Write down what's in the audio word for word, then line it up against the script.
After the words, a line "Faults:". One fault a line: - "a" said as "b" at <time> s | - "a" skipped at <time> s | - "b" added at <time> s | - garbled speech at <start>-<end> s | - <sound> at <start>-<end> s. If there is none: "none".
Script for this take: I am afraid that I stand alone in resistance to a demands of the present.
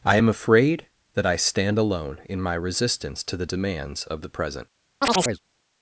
I am afraid that I stand alone in my resistance to the demands of the present.
Faults:
- "my" added at 2.4 s
- "a" said as "the" at 3.4 s
- chirp at 5.0-5.4 s